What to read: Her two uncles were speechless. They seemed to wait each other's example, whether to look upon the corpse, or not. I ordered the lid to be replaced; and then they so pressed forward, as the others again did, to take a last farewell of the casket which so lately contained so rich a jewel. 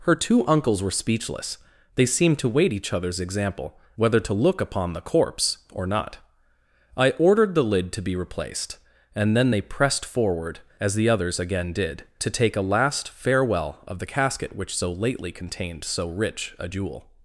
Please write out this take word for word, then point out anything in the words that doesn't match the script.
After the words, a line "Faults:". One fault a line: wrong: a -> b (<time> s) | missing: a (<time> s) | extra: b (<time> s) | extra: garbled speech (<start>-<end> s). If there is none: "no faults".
Her two uncles were speechless. They seemed to wait each other's example, whether to look upon the corpse, or not. I ordered the lid to be replaced; and then they pressed forward, as the others again did, to take a last farewell of the casket which so lately contained so rich a jewel.
Faults:
missing: so (9.6 s)